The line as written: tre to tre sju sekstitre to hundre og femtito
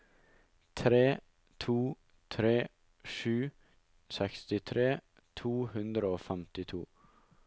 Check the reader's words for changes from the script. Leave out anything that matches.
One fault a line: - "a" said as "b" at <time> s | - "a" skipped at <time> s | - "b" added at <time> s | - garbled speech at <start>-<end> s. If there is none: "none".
none